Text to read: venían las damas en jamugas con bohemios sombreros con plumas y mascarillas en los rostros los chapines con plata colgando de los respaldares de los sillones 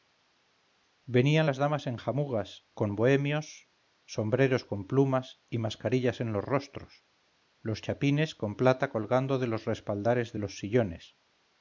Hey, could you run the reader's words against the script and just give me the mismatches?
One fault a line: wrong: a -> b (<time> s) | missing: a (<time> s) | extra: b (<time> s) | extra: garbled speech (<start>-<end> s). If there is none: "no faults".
no faults